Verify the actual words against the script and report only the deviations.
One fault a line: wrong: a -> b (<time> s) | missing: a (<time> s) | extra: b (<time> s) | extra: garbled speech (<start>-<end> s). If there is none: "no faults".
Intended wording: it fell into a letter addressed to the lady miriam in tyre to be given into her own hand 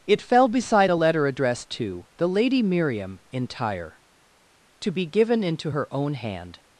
wrong: into -> beside (0.5 s)